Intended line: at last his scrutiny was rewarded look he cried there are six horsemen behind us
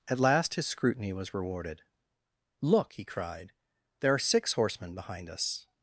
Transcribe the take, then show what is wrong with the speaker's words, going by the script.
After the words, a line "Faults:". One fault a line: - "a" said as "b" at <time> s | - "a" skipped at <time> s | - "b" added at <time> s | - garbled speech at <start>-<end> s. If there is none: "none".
at last his scrutiny was rewarded look he cried there are six horsemen behind us
Faults:
none